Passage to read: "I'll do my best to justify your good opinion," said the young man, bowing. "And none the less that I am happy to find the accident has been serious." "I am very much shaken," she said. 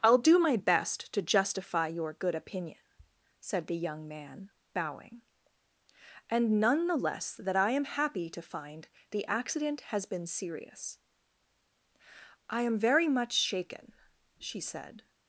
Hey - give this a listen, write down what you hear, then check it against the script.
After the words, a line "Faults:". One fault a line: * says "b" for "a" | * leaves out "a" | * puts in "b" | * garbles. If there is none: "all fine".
"I'll do my best to justify your good opinion," said the young man, bowing. "And none the less that I am happy to find the accident has been serious." "I am very much shaken," she said.
Faults:
all fine